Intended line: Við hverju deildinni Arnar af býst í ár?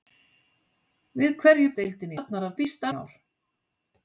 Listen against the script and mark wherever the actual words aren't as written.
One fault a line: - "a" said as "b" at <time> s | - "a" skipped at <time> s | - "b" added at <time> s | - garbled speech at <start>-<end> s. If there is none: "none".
none